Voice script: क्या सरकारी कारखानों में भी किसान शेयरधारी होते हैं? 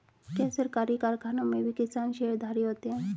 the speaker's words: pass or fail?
pass